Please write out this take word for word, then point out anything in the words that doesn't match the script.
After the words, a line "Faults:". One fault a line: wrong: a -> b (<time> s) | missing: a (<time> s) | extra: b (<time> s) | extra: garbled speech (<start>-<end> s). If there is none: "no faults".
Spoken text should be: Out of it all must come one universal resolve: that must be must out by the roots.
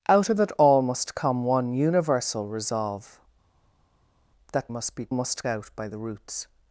Out of it all must come one universal resolve: that must be must out by the roots.
Faults:
no faults